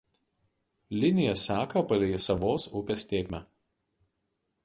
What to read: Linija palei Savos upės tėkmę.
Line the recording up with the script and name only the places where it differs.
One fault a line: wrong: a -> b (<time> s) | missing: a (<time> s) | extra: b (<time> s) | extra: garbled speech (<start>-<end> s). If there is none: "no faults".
extra: seka (1.4 s)